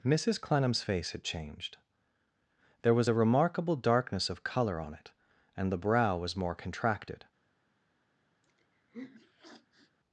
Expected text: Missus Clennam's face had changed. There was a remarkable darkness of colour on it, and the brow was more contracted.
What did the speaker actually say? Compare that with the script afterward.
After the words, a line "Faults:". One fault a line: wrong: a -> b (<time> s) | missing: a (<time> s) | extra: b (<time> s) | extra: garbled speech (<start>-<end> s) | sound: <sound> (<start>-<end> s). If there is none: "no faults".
Missus Clennam's face had changed. There was a remarkable darkness of colour on it, and the brow was more contracted.
Faults:
sound: sniff (8.4-10.0 s)